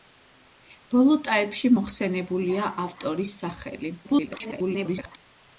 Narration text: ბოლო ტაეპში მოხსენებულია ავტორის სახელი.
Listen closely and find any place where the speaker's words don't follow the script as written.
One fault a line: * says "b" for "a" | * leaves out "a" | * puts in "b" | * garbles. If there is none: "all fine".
* garbles